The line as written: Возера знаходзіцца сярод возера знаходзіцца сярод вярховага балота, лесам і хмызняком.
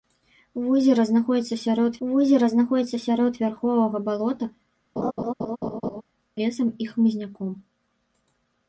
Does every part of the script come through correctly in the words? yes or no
yes